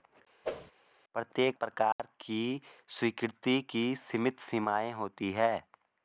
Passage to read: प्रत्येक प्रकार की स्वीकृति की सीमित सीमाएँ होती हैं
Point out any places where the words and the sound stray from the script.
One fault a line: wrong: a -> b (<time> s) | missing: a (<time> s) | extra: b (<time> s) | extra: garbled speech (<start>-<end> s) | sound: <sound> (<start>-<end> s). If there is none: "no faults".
sound: whoosh (0.4-0.7 s)
sound: dropout (1.9-2.0 s)